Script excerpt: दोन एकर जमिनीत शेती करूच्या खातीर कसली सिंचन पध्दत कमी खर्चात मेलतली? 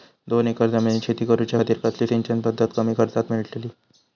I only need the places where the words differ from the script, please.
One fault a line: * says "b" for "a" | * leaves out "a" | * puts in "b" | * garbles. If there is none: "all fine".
all fine